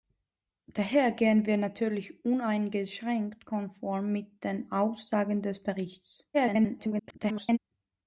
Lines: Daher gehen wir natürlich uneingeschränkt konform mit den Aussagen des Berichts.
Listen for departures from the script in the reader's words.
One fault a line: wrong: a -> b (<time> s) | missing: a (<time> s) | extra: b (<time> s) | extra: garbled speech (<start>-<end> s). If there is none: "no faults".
extra: garbled speech (6.3-7.6 s)